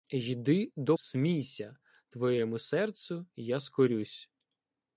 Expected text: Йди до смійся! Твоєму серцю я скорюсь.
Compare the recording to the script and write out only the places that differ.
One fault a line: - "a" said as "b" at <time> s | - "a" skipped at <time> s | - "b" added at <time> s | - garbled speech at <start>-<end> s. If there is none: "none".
none